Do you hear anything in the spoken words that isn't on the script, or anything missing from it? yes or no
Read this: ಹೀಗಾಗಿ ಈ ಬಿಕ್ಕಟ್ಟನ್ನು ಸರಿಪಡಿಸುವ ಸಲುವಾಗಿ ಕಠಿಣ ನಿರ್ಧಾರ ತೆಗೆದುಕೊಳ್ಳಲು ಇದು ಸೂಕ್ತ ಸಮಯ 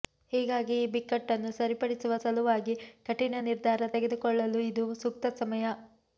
no